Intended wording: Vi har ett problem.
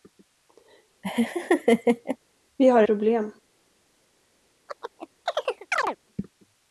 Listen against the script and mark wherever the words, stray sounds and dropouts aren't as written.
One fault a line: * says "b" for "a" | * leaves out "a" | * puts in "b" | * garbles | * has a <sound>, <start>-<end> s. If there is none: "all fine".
* has a laugh, 1.0-2.2 s
* leaves out "ett"
* has a chirp, 4.7-6.0 s